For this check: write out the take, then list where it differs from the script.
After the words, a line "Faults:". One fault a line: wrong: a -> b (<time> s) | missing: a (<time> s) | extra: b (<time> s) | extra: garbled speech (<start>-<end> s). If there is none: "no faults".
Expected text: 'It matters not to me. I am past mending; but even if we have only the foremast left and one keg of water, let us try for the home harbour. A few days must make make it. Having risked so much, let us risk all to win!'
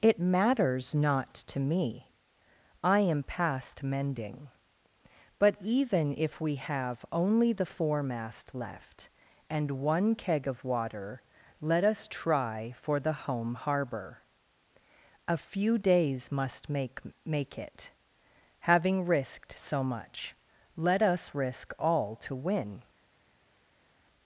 'It matters not to me. I am past mending; but even if we have only the foremast left and one keg of water, let us try for the home harbour. A few days must make make it. Having risked so much, let us risk all to win!'
Faults:
no faults